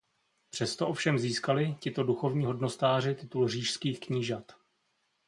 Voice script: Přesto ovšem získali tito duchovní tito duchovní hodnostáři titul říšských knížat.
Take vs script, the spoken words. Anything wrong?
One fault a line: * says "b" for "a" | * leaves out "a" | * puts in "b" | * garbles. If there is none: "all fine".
* leaves out "tito duchovní"